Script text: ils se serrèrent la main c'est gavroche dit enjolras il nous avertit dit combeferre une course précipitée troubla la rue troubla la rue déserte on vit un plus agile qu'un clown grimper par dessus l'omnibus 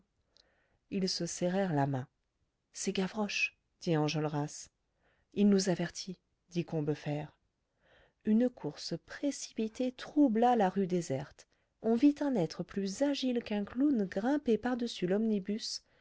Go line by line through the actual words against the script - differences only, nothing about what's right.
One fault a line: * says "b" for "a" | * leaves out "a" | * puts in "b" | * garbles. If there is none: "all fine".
* leaves out "troubla la rue"
* puts in "être"